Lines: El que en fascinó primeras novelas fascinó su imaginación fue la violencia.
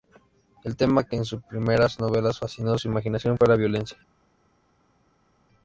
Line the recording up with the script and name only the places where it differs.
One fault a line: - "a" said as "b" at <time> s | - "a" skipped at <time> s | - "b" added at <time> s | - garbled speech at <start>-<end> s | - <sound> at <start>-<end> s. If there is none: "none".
- "tema" added at 0.8 s
- "fascinó" said as "sus" at 1.3 s